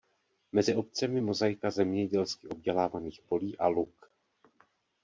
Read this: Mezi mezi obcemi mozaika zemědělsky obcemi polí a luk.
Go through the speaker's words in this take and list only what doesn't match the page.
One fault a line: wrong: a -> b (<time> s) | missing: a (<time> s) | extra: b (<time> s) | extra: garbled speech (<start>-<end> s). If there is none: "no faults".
missing: mezi (0.8 s)
wrong: obcemi -> obdělávaných (2.5 s)